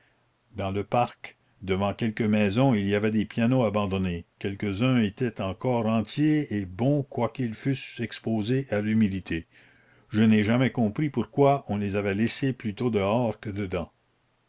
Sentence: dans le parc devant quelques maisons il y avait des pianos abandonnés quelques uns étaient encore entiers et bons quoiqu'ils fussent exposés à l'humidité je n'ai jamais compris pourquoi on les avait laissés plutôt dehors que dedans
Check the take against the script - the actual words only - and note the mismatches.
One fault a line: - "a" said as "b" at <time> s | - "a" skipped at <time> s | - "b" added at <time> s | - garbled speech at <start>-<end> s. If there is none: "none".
none